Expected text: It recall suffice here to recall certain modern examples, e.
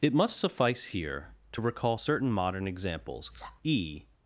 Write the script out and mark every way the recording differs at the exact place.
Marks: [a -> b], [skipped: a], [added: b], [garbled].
It [recall -> must] suffice here to recall certain modern examples, e.